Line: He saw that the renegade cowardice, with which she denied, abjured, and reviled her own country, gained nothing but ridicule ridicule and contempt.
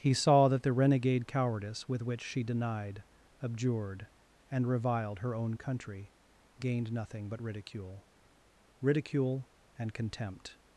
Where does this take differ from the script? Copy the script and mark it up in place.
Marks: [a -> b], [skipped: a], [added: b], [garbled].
He saw that the renegade cowardice, with which she denied, abjured, and reviled her own country, gained nothing but ridicule ridicule and contempt.